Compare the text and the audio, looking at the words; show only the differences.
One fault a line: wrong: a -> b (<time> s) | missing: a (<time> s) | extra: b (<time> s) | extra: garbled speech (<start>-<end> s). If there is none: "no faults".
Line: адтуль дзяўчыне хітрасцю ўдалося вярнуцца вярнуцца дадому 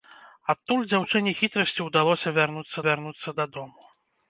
no faults